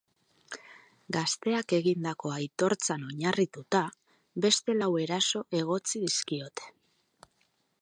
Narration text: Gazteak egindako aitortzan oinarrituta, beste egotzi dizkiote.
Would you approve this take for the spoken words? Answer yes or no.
no